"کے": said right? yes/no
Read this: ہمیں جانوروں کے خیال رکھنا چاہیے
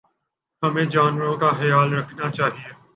no